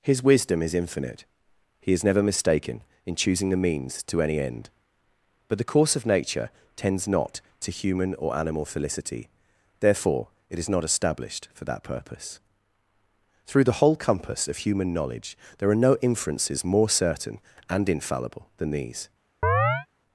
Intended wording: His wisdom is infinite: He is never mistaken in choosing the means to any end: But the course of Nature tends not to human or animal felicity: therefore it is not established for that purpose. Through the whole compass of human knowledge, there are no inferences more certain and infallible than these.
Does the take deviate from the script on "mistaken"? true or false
false